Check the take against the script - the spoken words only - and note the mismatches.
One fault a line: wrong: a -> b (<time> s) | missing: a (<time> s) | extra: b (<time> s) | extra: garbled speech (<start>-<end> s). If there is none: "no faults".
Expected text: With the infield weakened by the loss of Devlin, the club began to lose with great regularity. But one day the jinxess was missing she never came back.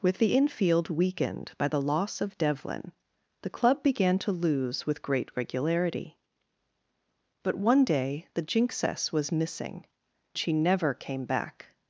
no faults